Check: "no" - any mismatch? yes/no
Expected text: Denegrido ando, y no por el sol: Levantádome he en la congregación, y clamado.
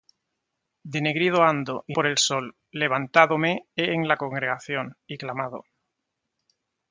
yes